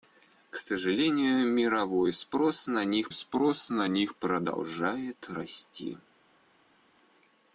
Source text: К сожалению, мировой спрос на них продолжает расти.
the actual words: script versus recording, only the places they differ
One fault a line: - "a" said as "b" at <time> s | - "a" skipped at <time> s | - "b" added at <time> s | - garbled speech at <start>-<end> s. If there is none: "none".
- "спрос на них" added at 3.1 s